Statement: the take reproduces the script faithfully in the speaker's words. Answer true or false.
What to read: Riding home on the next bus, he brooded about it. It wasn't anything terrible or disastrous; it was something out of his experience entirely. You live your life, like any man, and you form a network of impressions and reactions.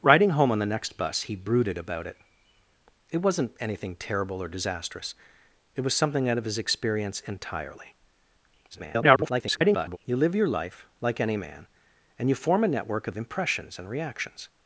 false